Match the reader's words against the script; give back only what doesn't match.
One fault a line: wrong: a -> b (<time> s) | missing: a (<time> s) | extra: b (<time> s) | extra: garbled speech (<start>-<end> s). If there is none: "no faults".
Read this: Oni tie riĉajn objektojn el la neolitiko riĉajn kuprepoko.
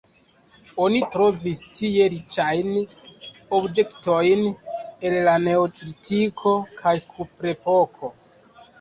extra: trovis (1.1 s)
wrong: riĉajn -> kaj (6.8 s)